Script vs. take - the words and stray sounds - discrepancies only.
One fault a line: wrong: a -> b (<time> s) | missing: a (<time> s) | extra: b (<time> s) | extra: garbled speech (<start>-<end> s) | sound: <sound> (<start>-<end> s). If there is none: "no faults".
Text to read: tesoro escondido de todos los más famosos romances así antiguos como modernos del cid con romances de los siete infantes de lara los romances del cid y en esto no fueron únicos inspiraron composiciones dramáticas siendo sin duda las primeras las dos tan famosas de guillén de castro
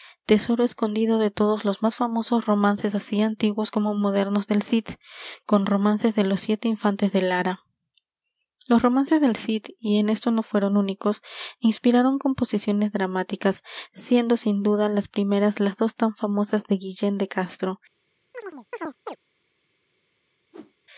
sound: chirp (18.3-19.2 s)
sound: whoosh (20.5-20.7 s)